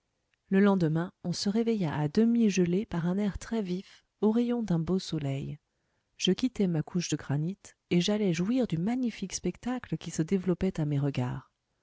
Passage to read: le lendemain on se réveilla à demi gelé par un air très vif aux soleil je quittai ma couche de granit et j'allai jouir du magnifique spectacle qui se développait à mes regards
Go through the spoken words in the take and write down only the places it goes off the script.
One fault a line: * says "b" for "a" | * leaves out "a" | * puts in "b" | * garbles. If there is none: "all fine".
* puts in "rayons d'un beau"